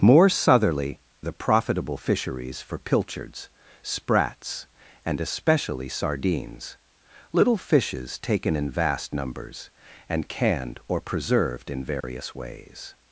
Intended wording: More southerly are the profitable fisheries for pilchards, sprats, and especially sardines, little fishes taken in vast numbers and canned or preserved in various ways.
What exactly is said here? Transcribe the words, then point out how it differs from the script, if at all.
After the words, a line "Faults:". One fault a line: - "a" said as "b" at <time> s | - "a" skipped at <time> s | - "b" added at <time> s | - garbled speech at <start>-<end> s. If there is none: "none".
More southerly the profitable fisheries for pilchards, sprats, and especially sardines, little fishes taken in vast numbers and canned or preserved in various ways.
Faults:
- "are" skipped at 1.0 s